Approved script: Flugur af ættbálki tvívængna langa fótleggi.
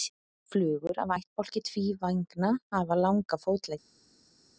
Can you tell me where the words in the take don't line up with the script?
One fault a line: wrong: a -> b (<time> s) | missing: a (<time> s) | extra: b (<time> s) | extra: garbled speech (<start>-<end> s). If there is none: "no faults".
extra: hafa (2.7 s)